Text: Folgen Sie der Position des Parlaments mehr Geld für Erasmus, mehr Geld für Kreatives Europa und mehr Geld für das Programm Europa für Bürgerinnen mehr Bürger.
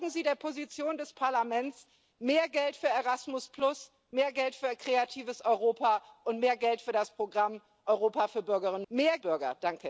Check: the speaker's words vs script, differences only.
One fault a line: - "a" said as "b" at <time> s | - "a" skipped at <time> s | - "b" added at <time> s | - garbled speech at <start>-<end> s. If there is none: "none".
none